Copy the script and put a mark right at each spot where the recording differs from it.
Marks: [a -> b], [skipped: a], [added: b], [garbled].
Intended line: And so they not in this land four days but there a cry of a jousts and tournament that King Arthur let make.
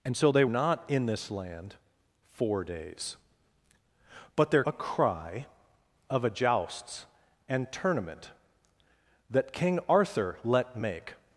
And so they not in this land four days but there a cry of a jousts and tournament that King Arthur let make.